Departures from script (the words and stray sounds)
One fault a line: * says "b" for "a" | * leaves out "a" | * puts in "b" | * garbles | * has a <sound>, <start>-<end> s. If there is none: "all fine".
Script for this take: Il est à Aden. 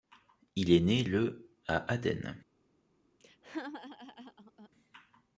* puts in "né le"
* has a laugh, 3.2-4.7 s